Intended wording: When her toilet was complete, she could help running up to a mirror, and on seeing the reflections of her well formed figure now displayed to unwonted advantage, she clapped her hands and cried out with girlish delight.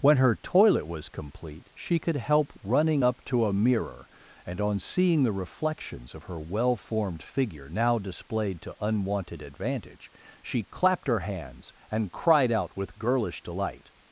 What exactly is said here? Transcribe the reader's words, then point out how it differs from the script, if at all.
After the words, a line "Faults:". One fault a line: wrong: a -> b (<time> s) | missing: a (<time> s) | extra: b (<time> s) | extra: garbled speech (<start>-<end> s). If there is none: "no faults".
When her toilet was complete, she could help running up to a mirror, and on seeing the reflections of her well formed figure now displayed to unwonted advantage, she clapped her hands and cried out with girlish delight.
Faults:
no faults